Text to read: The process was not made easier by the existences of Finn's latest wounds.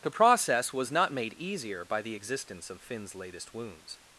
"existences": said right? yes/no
no